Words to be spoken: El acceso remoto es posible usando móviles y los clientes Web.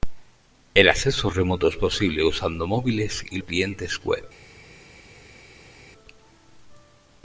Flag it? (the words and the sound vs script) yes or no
yes